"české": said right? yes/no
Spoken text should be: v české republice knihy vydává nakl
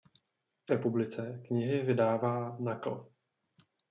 no